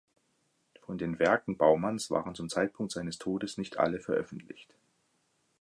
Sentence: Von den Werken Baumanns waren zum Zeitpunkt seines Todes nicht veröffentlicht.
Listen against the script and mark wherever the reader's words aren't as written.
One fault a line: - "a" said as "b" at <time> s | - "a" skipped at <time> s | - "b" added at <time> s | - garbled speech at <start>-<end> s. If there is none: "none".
- "alle" added at 3.8 s